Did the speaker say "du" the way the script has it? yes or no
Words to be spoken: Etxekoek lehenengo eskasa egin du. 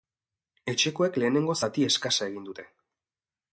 no